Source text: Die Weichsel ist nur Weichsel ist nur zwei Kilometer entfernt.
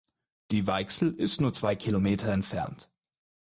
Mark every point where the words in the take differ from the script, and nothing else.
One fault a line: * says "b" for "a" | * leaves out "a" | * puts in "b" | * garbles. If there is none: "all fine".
* leaves out "Weichsel ist nur"